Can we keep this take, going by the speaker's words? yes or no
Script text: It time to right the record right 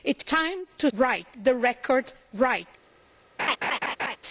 yes